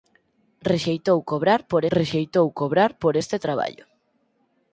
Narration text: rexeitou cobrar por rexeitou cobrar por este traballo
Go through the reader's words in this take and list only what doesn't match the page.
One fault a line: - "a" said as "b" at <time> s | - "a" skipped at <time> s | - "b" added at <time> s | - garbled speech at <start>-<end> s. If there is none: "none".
none